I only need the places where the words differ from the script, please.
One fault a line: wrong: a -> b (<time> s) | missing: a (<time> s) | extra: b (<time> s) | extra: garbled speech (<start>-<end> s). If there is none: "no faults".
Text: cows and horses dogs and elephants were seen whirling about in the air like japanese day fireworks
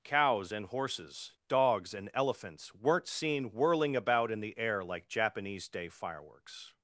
wrong: were -> weren't (2.7 s)